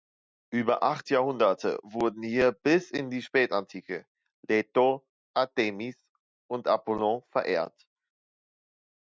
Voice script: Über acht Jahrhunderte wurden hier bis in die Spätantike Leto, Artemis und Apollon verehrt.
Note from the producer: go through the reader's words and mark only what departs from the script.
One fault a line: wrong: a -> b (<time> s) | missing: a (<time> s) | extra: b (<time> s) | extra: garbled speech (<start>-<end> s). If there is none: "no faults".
no faults